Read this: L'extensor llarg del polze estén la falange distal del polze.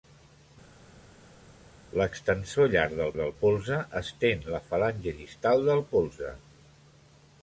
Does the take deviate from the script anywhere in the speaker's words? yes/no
yes